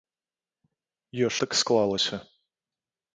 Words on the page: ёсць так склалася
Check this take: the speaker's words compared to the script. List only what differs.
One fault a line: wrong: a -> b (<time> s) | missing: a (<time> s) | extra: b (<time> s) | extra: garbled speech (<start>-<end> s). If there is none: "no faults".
no faults